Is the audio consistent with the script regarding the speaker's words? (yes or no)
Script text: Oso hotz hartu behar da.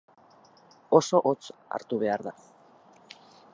yes